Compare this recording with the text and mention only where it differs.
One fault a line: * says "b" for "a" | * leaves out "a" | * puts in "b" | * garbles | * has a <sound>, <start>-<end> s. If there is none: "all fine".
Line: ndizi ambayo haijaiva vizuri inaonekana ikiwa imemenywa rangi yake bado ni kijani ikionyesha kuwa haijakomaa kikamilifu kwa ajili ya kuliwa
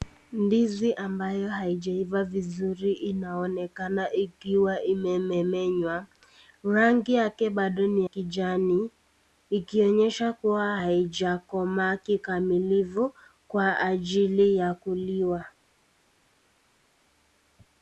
all fine